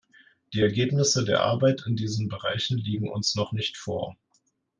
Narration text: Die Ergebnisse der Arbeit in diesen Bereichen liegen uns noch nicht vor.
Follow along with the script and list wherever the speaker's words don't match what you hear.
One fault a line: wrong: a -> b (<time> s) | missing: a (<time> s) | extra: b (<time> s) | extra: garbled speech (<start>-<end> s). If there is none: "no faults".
no faults